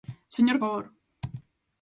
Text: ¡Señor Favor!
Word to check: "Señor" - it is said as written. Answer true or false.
true